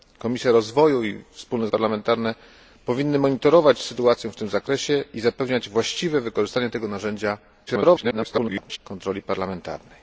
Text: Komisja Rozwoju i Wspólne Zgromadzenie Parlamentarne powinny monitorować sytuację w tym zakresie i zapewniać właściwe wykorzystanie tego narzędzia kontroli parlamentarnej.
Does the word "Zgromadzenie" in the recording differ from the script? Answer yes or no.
yes